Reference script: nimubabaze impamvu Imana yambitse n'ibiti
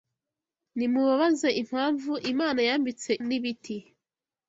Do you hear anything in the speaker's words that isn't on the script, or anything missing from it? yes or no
no